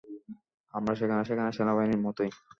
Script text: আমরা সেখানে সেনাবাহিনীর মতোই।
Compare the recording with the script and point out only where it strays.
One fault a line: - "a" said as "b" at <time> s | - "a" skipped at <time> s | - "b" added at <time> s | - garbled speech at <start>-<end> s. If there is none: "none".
- "সেখানে" added at 1.2 s